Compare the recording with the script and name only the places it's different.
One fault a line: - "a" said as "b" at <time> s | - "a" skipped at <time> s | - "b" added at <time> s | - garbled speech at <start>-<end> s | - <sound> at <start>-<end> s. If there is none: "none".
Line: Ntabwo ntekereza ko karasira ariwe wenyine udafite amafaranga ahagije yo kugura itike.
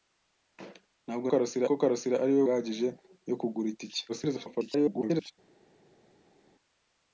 - "ntekereza" said as "karasira" at 1.3 s
- "wenyine udafite amafaranga" skipped at 2.4 s
- garbled speech at 4.1-5.3 s